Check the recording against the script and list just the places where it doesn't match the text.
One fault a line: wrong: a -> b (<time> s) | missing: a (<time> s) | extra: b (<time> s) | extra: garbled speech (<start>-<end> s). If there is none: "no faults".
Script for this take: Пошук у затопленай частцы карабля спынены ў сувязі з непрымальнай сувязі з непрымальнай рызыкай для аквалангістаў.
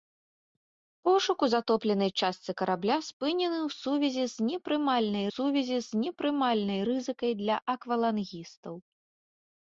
no faults